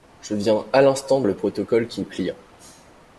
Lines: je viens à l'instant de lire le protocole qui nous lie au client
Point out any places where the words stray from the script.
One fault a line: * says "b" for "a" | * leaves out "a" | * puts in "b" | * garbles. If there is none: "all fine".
* leaves out "de lire"
* leaves out "nous lie"